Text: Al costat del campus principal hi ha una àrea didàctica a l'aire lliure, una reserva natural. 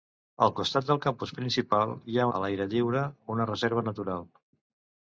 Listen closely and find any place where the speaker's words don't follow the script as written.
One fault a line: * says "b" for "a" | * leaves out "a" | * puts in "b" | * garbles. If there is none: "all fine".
* leaves out "una àrea didàctica"